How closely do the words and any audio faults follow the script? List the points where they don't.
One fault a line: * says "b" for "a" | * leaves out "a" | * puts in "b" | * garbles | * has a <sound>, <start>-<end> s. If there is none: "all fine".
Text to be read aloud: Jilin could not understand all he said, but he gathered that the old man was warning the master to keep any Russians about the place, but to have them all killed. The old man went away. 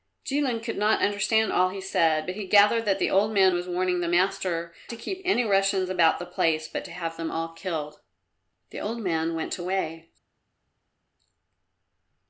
all fine